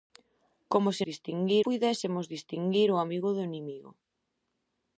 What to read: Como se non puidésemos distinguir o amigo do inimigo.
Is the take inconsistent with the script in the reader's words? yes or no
yes